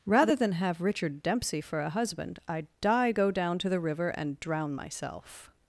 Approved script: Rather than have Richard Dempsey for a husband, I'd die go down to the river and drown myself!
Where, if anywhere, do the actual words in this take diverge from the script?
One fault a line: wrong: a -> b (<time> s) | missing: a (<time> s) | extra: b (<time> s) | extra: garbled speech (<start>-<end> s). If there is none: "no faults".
no faults